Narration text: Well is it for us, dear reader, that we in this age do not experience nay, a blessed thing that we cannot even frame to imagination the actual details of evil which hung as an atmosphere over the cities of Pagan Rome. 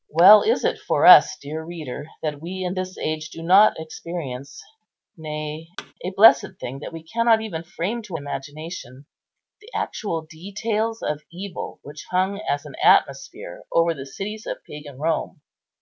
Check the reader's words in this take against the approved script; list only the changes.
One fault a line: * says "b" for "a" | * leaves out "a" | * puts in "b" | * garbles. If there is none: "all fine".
all fine